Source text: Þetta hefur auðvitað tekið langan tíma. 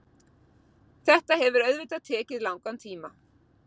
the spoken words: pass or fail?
pass